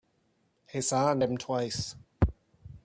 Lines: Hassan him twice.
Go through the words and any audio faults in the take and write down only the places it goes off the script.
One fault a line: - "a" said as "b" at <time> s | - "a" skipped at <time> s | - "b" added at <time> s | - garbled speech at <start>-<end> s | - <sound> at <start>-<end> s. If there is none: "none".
none